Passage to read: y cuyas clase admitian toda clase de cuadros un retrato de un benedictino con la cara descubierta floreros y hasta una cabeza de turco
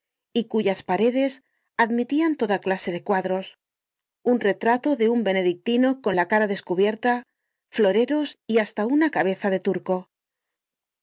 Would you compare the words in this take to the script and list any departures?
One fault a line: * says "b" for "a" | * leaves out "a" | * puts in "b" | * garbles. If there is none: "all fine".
* says "paredes" for "clase"